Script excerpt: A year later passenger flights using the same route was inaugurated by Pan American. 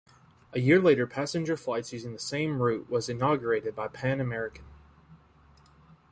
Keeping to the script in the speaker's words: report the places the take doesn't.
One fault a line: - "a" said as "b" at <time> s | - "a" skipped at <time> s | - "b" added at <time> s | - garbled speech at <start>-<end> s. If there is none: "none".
none